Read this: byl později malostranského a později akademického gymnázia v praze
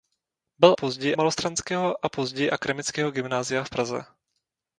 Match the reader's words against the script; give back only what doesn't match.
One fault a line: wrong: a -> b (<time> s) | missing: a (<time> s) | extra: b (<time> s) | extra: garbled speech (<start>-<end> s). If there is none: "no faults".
no faults